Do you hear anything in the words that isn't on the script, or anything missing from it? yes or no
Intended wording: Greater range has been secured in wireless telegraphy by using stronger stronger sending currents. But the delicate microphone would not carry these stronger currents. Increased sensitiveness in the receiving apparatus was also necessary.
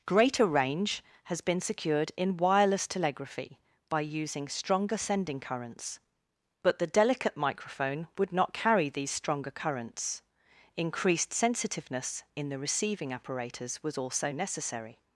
yes